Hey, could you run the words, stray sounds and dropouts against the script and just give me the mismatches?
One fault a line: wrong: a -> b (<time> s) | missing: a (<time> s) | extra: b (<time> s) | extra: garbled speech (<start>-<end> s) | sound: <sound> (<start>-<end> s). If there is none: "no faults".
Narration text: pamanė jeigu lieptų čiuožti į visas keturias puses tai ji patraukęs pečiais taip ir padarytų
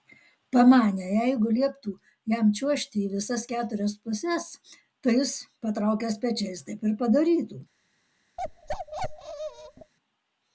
extra: jam (2.3 s)
wrong: ji -> jis (5.2 s)
sound: bark (8.4-9.9 s)